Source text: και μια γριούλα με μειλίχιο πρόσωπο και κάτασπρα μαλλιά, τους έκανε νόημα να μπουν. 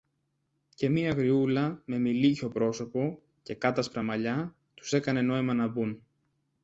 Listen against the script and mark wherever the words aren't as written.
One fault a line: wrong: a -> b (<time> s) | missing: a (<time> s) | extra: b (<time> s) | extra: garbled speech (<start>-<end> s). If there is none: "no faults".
no faults